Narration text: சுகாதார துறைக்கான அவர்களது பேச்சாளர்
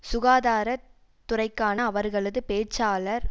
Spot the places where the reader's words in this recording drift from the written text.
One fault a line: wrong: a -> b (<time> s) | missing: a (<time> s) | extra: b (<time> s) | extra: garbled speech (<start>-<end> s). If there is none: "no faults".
no faults